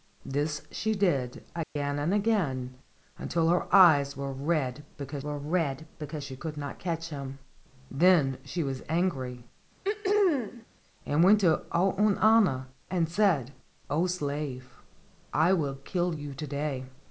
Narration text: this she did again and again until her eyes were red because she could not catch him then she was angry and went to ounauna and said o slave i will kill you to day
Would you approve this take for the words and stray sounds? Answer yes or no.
no